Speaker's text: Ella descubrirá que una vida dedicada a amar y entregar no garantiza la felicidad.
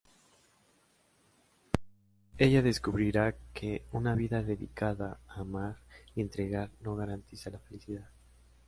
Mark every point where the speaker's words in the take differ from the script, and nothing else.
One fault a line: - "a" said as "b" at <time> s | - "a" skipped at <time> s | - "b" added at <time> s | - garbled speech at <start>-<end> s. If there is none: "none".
none